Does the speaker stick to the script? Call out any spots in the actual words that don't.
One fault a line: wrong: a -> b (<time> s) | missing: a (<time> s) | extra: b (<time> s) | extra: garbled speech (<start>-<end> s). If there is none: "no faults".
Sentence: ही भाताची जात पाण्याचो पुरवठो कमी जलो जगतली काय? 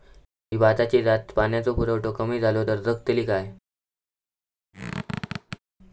extra: तर (2.7 s)